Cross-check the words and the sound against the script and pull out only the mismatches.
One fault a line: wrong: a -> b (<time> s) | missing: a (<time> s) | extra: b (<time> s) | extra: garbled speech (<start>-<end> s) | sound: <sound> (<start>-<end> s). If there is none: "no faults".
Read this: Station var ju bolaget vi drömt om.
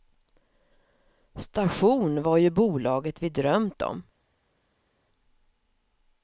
no faults